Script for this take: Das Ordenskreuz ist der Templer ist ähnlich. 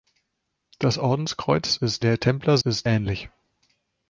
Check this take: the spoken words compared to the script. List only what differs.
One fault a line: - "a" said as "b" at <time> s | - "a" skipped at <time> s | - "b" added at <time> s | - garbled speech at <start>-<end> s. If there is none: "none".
none